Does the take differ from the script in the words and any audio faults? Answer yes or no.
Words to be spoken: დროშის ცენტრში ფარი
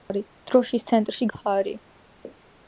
no